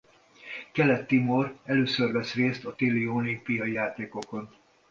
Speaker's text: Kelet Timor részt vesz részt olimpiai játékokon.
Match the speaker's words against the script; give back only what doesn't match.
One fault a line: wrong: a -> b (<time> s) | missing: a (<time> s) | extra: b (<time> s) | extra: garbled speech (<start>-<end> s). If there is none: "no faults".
wrong: részt -> először (1.6 s)
extra: a téli (2.6 s)